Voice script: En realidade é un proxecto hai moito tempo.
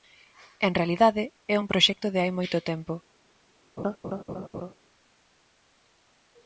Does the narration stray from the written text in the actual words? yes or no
yes